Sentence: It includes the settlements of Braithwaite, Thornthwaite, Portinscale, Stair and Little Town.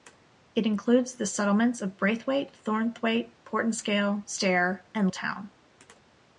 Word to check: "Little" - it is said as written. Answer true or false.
false